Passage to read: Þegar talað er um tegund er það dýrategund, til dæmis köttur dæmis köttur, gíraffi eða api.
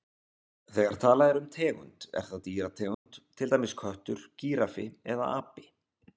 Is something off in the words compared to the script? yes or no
yes